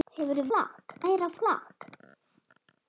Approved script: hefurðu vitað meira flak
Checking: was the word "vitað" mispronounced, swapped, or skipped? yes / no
yes